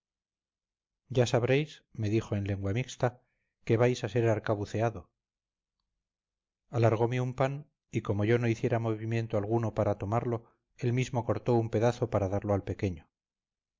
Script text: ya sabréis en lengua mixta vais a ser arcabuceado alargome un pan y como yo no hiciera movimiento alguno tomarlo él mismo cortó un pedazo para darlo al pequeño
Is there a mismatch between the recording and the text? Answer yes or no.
yes